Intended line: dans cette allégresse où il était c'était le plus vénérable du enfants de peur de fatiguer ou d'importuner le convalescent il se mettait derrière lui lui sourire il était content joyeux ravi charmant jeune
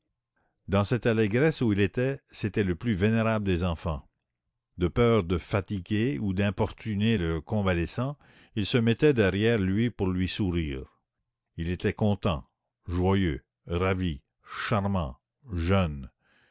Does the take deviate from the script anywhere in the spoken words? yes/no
yes